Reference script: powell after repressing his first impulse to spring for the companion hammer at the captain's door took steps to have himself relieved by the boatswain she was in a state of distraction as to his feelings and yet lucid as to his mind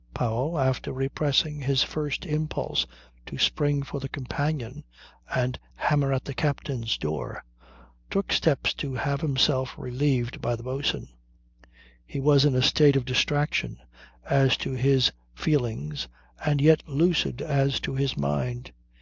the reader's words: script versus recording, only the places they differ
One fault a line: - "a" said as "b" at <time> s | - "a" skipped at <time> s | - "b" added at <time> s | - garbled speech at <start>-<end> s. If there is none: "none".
- "and" added at 5.3 s
- "she" said as "he" at 12.1 s